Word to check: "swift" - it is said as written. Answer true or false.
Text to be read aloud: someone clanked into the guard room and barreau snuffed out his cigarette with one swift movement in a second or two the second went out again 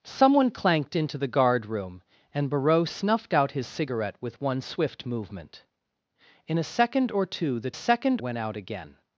true